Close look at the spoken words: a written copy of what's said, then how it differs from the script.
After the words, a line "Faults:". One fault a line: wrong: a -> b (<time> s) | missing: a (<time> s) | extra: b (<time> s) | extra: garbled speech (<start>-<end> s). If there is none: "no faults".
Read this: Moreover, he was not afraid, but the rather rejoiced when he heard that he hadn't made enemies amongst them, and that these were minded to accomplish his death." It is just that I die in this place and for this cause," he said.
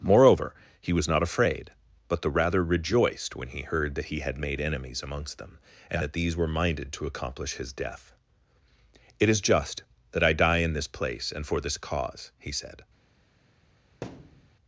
Moreover, he was not afraid, but the rather rejoiced when he heard that he had made enemies amongst them, and that these were minded to accomplish his death." It is just that I die in this place and for this cause," he said.
Faults:
wrong: hadn't -> had (4.2 s)